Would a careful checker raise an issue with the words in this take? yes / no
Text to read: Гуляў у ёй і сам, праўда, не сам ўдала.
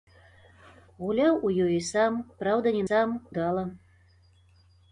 no